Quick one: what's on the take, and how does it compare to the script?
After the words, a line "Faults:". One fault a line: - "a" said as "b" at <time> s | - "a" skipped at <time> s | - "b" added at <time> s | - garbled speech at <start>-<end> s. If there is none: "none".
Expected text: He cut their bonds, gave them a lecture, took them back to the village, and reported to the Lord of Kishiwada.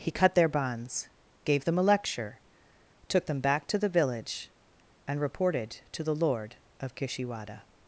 He cut their bonds, gave them a lecture, took them back to the village, and reported to the Lord of Kishiwada.
Faults:
none